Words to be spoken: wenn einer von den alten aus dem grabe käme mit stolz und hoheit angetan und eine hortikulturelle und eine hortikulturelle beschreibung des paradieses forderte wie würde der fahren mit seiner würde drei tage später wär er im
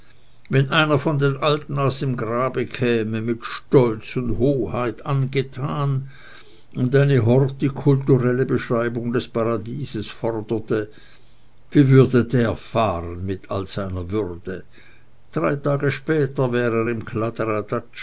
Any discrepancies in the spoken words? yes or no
yes